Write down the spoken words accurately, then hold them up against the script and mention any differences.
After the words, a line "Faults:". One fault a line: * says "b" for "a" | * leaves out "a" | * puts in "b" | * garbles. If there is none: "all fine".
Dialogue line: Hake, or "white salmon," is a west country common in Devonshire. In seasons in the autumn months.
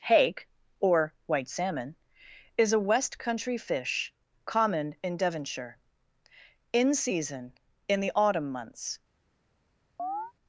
Hake, or "white salmon," is a west country fish, common in Devonshire. In season in the autumn months.
Faults:
* puts in "fish"
* says "season" for "seasons"